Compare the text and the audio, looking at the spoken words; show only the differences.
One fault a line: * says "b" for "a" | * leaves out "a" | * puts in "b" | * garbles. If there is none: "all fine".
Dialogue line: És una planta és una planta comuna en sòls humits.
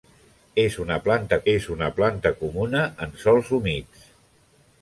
all fine